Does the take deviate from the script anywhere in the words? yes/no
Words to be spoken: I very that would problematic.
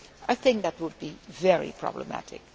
yes